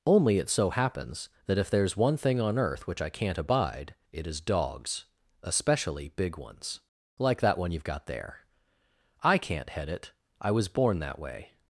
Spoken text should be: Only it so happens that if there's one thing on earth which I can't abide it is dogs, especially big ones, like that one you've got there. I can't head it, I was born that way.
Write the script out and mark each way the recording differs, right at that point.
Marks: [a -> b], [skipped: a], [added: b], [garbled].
Only it so happens that if there's one thing on earth which I can't abide it is dogs, especially big ones, like that one you've got there. I can't head it, I was born that way.